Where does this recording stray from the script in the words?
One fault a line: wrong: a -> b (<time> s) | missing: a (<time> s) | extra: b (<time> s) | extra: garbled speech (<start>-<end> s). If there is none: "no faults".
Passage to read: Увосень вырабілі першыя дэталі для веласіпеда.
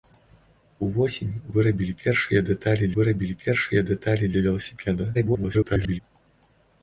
extra: вырабілі першыя дэталі (3.0 s)
extra: garbled speech (5.1-6.0 s)